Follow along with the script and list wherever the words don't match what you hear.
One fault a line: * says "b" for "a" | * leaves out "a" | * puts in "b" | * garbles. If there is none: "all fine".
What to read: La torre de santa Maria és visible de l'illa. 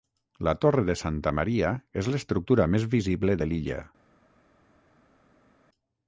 * puts in "l'estructura més"